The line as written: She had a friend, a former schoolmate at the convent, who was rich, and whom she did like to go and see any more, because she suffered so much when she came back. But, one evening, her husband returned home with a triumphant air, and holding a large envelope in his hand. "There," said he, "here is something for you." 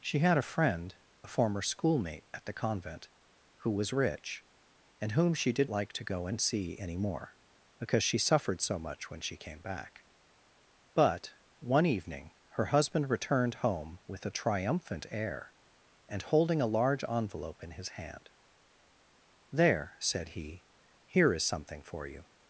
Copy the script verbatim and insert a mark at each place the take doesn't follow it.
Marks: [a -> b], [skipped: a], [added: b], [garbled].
She had a friend, a former schoolmate at the convent, who was rich, and whom she did like to go and see any more, because she suffered so much when she came back. But, one evening, her husband returned home with a triumphant air, and holding a large envelope in his hand. "There," said he, "here is something for you."